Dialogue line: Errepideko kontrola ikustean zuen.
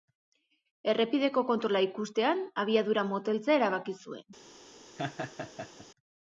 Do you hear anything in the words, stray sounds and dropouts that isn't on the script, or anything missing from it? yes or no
yes